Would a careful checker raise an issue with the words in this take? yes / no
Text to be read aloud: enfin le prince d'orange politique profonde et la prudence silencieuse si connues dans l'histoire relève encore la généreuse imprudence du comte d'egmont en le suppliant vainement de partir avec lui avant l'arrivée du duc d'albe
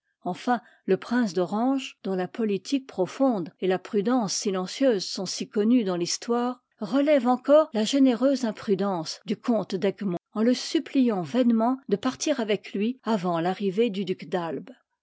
yes